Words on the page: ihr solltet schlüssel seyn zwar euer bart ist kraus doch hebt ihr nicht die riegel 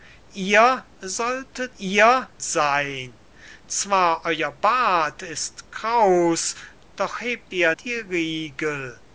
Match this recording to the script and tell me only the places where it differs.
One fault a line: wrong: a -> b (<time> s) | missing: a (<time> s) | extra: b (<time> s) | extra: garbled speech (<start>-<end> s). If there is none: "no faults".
wrong: schlüssel -> ihr (1.8 s)
missing: nicht (7.7 s)